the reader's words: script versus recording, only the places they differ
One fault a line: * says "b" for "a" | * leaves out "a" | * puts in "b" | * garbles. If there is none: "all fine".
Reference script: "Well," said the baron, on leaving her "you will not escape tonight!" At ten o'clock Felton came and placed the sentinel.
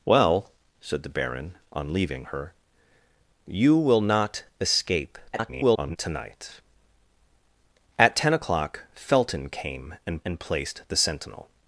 * garbles
* puts in "and"